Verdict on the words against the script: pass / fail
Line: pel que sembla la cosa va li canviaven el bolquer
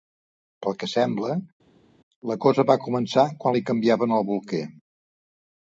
fail